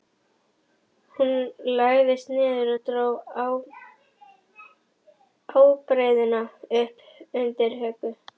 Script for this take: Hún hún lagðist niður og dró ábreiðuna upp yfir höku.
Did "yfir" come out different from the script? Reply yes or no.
yes